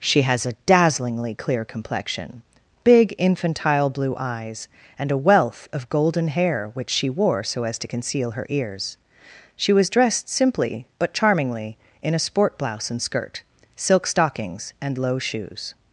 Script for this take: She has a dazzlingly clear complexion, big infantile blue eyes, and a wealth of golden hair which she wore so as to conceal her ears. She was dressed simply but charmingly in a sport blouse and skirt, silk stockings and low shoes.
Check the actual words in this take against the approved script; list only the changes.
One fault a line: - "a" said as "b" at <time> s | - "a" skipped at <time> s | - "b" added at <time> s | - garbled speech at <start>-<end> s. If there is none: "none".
none